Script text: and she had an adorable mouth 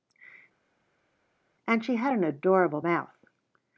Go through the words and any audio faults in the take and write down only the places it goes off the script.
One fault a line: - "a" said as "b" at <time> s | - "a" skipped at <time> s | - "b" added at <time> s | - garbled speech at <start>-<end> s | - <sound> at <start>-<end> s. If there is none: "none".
none